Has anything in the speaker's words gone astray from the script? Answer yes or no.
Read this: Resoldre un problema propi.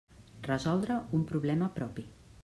no